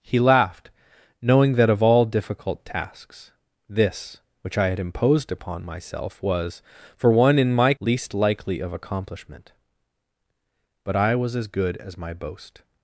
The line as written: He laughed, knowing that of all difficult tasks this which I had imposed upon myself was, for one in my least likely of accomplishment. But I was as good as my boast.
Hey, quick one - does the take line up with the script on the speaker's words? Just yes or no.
yes